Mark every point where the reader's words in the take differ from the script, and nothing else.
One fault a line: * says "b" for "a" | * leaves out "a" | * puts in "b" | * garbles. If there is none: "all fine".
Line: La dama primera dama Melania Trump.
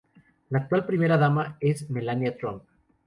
* says "actual" for "dama"
* puts in "es"